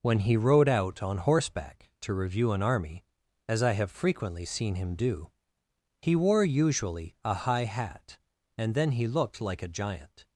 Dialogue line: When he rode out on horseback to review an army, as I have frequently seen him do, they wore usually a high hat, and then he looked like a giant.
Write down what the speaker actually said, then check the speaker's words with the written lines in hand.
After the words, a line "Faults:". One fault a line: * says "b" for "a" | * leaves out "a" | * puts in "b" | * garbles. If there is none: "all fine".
When he rode out on horseback to review an army, as I have frequently seen him do, he wore usually a high hat, and then he looked like a giant.
Faults:
* says "he" for "they"